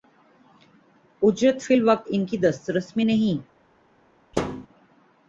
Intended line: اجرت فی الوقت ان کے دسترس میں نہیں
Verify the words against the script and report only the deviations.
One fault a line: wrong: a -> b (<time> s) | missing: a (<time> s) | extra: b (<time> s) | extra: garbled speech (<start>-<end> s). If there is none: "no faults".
wrong: کے -> کی (2.2 s)